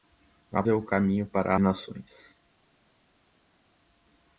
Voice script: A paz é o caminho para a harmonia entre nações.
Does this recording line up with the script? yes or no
no